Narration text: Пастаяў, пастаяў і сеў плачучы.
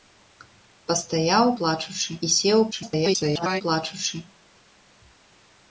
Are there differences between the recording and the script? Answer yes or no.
yes